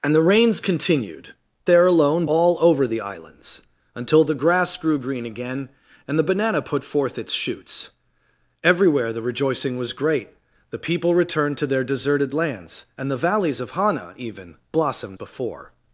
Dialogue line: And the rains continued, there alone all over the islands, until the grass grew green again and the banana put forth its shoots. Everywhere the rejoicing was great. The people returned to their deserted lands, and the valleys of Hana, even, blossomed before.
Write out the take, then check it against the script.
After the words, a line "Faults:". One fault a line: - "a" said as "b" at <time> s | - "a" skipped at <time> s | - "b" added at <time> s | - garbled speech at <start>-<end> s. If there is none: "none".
And the rains continued, there alone all over the islands, until the grass grew green again and the banana put forth its shoots. Everywhere the rejoicing was great. The people returned to their deserted lands, and the valleys of Hana, even, blossomed before.
Faults:
none